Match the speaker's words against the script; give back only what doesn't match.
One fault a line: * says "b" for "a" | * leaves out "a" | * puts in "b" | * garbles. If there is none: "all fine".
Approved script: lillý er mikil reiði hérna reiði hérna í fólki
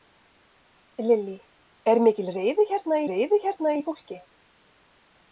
all fine